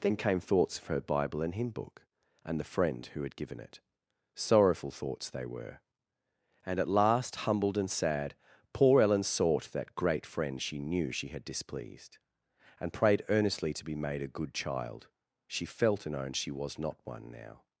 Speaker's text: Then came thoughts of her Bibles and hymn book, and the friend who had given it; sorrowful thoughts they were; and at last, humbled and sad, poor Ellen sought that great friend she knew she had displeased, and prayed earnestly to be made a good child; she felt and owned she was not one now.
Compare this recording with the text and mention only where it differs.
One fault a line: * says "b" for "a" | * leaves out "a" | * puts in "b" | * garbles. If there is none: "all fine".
* says "Bible" for "Bibles"